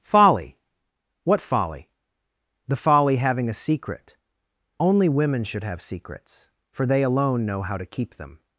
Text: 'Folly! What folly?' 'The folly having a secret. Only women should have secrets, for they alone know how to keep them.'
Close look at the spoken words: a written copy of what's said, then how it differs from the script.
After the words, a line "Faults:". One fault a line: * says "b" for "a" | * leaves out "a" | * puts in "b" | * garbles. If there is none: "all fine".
'Folly! What folly?' 'The folly having a secret. Only women should have secrets, for they alone know how to keep them.'
Faults:
all fine